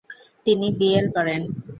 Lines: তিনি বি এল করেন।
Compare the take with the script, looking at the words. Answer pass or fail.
pass